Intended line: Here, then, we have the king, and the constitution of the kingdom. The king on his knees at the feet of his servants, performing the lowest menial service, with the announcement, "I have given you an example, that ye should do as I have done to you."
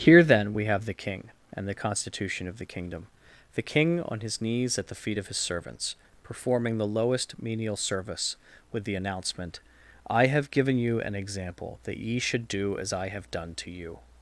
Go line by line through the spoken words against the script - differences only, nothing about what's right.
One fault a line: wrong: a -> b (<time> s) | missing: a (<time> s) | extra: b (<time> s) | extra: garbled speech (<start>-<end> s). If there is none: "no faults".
no faults